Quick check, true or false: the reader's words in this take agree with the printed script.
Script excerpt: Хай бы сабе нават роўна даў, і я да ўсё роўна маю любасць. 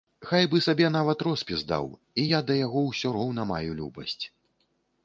false